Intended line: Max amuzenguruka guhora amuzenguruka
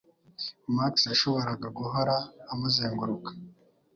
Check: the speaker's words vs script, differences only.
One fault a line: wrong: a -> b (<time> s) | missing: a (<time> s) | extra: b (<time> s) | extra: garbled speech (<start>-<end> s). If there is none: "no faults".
wrong: amuzenguruka -> yashoboraga (1.1 s)